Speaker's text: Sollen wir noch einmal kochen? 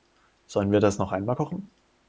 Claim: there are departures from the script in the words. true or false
true